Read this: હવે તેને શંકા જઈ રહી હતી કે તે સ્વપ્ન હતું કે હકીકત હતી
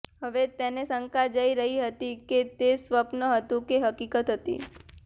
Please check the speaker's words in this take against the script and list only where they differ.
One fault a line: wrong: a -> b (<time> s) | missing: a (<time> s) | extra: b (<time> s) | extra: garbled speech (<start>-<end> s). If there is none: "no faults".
no faults